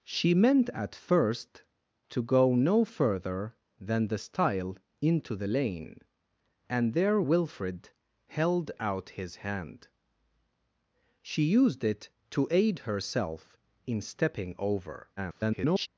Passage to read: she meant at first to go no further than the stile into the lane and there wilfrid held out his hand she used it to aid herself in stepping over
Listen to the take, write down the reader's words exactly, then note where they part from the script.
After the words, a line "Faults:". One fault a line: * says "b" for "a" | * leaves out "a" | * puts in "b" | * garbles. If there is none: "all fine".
she meant at first to go no further than the stile into the lane and there wilfrid held out his hand she used it to aid herself in stepping over [garbled]
Faults:
* garbles